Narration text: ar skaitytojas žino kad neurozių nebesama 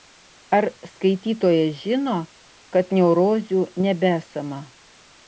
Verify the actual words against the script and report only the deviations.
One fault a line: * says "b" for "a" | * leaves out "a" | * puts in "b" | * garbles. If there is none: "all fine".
all fine